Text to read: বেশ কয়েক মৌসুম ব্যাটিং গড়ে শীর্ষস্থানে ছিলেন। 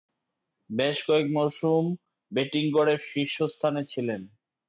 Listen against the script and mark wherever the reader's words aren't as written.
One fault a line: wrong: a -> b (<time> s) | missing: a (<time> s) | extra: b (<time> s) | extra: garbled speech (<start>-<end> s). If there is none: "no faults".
no faults